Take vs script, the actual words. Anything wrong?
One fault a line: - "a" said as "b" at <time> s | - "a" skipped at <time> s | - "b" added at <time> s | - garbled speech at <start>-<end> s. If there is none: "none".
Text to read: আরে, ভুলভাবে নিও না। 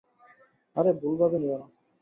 none